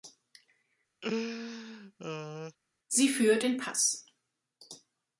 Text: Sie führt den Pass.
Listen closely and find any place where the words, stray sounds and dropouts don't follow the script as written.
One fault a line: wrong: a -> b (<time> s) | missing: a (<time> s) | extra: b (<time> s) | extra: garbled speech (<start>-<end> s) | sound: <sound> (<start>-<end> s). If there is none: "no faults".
sound: laugh (1.0-2.6 s)